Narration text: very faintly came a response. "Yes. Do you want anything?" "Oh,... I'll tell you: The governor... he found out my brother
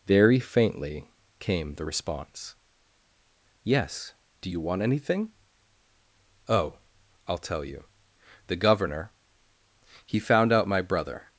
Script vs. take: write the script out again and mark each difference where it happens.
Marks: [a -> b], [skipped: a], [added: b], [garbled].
very faintly came [a -> the] response. "Yes. Do you want anything?" "Oh,... I'll tell you: The governor... he found out my brother